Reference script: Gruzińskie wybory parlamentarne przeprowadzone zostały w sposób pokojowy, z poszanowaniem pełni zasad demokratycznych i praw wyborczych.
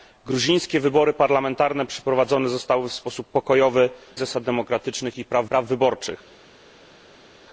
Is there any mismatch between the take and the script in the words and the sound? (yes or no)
yes